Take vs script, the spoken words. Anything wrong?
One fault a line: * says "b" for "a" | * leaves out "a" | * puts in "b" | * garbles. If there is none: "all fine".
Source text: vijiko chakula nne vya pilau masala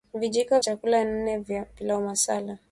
all fine